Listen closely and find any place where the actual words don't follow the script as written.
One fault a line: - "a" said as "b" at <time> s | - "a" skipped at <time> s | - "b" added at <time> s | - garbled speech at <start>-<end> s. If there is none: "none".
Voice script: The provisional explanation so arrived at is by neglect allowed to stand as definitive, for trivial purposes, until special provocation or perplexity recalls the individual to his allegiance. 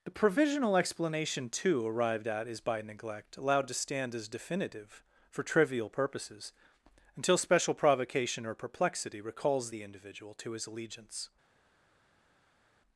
- "so" said as "too" at 1.5 s